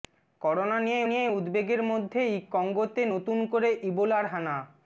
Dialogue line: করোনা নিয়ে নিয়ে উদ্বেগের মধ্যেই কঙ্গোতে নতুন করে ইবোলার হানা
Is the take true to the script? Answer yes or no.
yes